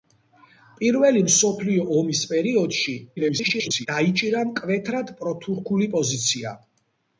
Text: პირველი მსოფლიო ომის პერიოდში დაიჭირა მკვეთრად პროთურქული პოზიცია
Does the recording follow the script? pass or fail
fail